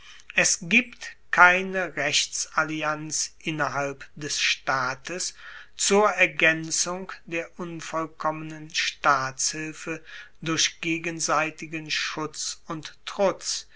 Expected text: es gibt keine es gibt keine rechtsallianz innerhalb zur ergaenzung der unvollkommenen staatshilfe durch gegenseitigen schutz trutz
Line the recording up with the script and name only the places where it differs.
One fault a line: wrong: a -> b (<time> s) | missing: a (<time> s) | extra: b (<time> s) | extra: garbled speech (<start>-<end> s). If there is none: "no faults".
wrong: es gibt keine rechtsallianz innerhalb -> rechtsallianz innerhalb des staates (1.9 s)
extra: und (12.7 s)